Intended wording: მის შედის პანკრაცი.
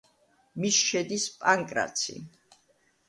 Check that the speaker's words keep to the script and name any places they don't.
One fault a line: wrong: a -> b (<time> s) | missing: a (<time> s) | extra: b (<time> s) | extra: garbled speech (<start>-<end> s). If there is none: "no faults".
no faults